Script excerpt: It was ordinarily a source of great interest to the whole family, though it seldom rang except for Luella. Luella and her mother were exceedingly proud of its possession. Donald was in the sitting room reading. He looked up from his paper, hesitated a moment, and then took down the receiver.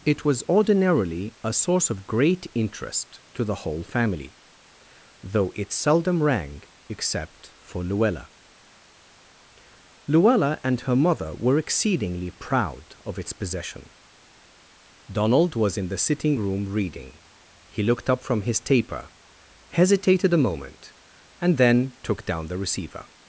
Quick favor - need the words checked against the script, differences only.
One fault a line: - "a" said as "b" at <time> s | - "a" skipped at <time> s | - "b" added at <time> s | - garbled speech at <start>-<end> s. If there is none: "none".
- "paper" said as "taper" at 18.6 s